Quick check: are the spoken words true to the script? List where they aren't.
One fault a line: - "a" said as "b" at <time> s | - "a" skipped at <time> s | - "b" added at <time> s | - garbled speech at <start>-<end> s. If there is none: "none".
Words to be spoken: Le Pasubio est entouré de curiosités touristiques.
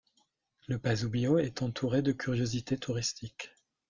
none